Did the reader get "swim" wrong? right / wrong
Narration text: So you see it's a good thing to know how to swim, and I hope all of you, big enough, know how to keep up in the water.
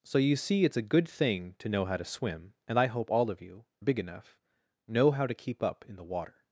right